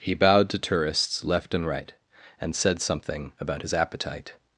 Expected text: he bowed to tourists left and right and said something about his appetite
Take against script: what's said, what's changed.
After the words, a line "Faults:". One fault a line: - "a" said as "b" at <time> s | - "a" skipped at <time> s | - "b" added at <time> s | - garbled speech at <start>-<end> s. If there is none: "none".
he bowed to tourists left and right and said something about his appetite
Faults:
none